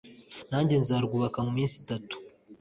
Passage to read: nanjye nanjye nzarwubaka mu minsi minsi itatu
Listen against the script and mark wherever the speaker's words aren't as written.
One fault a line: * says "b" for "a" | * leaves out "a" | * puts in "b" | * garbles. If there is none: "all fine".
* leaves out "nanjye"
* leaves out "minsi"